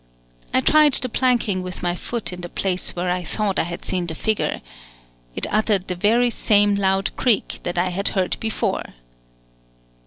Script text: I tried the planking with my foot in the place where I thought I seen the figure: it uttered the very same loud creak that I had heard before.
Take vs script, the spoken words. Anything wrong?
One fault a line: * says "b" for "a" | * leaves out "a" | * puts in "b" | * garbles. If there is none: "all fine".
* puts in "had"